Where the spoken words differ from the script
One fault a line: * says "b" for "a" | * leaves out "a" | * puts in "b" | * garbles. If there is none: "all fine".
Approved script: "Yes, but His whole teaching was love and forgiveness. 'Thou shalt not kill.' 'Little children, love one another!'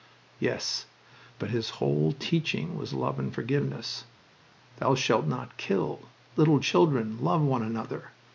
all fine